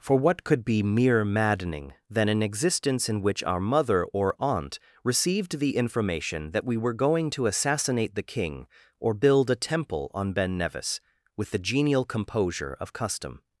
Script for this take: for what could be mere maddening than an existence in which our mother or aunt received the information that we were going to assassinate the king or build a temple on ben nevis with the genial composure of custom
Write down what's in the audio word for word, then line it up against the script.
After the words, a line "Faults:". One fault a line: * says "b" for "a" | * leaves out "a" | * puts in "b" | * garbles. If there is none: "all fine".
for what could be mere maddening than an existence in which our mother or aunt received the information that we were going to assassinate the king or build a temple on ben nevis with the genial composure of custom
Faults:
all fine